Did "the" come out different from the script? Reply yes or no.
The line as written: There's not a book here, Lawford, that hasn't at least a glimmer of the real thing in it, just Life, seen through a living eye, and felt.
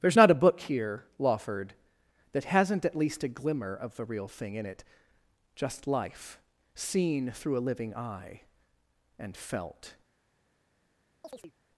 no